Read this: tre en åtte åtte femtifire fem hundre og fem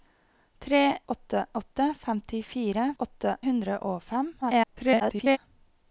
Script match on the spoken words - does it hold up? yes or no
no